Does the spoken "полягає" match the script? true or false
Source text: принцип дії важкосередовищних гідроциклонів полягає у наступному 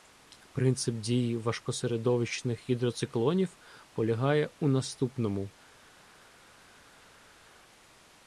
true